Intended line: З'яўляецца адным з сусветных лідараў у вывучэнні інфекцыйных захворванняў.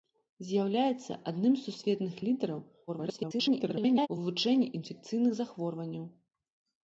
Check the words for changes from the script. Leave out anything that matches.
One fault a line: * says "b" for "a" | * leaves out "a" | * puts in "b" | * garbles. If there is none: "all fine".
* garbles